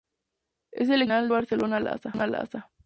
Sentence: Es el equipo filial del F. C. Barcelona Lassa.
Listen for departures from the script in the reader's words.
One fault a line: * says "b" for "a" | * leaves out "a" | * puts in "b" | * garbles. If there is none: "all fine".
* leaves out "del F C"